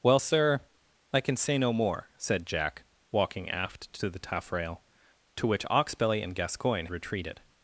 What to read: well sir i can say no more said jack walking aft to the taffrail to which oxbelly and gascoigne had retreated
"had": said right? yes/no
no